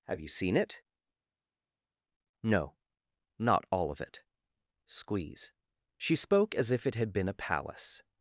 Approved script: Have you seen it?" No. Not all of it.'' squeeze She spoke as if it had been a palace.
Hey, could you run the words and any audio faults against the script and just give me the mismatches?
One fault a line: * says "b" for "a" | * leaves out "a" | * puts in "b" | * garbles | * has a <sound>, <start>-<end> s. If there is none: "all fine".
all fine